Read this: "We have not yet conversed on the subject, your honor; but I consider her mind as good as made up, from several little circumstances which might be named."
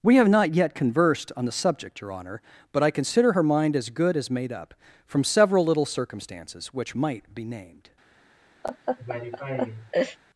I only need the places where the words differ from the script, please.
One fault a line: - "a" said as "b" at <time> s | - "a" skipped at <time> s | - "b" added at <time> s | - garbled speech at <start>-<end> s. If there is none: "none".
none